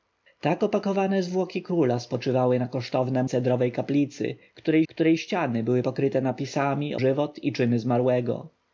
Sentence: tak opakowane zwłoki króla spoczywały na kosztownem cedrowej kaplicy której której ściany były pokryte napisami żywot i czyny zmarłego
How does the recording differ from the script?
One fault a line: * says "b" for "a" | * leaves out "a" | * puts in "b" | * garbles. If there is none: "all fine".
all fine